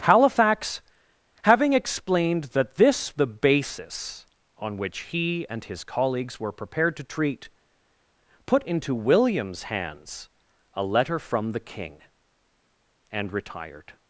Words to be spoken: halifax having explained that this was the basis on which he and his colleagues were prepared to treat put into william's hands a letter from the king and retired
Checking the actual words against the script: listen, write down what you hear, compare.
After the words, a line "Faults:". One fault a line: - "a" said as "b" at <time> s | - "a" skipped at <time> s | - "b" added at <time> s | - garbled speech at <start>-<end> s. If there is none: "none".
halifax having explained that this the basis on which he and his colleagues were prepared to treat put into william's hands a letter from the king and retired
Faults:
- "was" skipped at 3.2 s